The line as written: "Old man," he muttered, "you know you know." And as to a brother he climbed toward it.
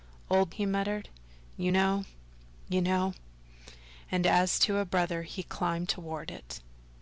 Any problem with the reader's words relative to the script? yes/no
yes